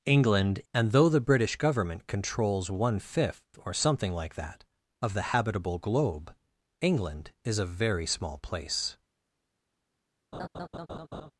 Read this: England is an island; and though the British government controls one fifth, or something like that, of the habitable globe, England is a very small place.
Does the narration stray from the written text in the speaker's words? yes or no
yes